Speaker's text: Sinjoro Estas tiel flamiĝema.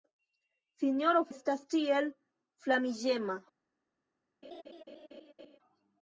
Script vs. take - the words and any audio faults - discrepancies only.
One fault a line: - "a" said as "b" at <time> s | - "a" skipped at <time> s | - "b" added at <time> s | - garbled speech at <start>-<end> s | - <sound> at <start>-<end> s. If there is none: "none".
- laugh at 4.4-5.6 s